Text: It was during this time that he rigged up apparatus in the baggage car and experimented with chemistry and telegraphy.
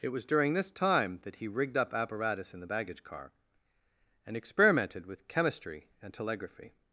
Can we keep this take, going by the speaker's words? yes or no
yes